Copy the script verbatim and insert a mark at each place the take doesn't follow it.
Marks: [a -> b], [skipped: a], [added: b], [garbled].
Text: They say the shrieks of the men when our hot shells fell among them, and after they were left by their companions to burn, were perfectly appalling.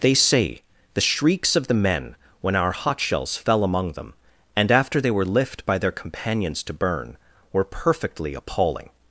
They say the shrieks of the men when our hot shells fell among them, and after they were [left -> lift] by their companions to burn, were perfectly appalling.